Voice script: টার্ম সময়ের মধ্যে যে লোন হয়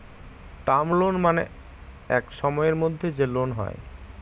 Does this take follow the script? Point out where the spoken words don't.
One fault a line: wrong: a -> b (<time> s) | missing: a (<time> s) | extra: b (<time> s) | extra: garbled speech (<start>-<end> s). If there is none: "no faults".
extra: লোন মানে এক (1.0 s)